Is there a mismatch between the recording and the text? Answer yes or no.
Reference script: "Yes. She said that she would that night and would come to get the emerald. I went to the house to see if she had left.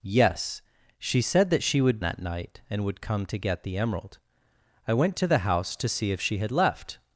no